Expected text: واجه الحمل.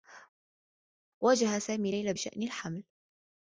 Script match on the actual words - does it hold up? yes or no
no